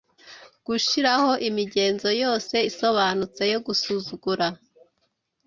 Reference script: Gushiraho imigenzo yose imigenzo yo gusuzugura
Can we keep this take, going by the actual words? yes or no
no